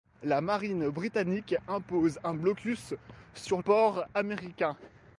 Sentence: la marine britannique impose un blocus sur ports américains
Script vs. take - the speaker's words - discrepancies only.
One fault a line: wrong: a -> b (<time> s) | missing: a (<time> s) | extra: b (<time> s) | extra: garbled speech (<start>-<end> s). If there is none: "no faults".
no faults